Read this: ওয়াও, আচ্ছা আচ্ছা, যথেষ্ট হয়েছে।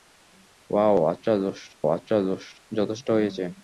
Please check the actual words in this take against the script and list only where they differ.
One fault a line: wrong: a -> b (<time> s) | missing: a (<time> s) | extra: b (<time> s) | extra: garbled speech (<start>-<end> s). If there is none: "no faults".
no faults